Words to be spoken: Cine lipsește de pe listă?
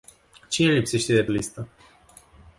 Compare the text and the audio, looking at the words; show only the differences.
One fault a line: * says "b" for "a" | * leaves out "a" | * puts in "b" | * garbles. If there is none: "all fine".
all fine